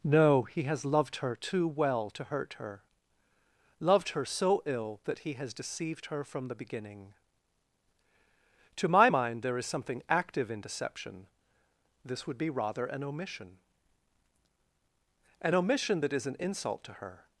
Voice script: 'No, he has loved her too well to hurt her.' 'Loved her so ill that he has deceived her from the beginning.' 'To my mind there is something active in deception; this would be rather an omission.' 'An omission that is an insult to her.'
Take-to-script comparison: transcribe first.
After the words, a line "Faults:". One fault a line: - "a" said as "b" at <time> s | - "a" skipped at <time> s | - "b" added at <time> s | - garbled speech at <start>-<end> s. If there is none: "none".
'No, he has loved her too well to hurt her.' 'Loved her so ill that he has deceived her from the beginning.' 'To my mind there is something active in deception; this would be rather an omission.' 'An omission that is an insult to her.'
Faults:
none